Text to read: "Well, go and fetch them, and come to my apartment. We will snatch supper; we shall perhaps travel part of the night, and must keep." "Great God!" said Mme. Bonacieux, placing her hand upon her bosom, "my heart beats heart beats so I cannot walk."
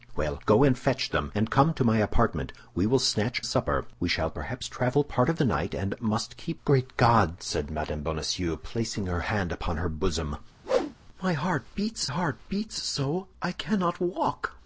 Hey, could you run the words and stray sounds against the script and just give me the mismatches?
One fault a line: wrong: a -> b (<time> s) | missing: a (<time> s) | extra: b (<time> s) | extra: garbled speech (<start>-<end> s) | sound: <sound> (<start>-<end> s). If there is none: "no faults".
sound: whoosh (10.6-11.0 s)